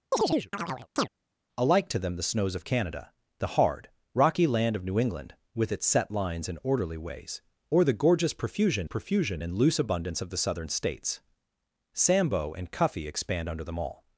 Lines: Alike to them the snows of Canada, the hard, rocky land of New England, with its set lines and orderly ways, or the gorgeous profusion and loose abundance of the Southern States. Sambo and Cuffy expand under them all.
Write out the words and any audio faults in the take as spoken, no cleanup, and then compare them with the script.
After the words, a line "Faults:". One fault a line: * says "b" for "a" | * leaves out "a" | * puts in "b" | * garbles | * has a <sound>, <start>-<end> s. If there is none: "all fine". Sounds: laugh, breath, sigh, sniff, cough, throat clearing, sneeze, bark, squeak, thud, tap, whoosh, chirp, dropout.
Alike to them the snows of Canada, the hard, rocky land of New England, with its set lines and orderly ways, or the gorgeous profusion profusion and loose abundance of the Southern States. Sambo and Cuffy expand under them all.
Faults:
* has a chirp, 0.1-1.1 s
* puts in "profusion"